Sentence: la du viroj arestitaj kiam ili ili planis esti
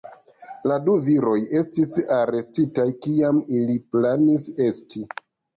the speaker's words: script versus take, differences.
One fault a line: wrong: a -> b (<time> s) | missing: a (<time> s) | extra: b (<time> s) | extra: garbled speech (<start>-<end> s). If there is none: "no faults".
extra: estis (1.6 s)
missing: ili (3.8 s)